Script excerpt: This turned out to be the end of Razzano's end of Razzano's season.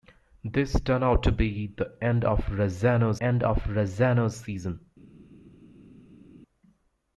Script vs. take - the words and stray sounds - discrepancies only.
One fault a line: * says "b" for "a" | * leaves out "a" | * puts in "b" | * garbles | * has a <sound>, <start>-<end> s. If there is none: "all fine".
all fine